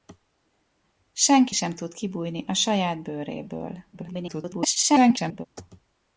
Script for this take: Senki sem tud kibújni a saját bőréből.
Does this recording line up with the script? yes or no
no